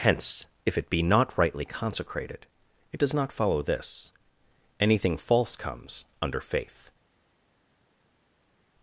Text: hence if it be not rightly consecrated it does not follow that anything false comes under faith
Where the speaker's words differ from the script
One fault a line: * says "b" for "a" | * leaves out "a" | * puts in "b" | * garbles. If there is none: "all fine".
* says "this" for "that"